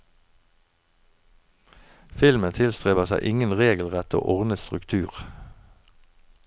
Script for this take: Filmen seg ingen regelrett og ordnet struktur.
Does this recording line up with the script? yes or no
no